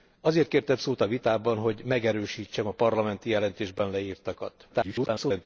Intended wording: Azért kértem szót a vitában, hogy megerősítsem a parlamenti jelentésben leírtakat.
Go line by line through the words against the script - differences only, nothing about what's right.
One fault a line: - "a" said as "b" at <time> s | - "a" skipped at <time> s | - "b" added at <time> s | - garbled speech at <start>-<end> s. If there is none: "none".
- garbled speech at 4.7-5.5 s